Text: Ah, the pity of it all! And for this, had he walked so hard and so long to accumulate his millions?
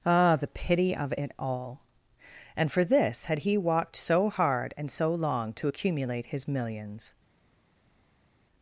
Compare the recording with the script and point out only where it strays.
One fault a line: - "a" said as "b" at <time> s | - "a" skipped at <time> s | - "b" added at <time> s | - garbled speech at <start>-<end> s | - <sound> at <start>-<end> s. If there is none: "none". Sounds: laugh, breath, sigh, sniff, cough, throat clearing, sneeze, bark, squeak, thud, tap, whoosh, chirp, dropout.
none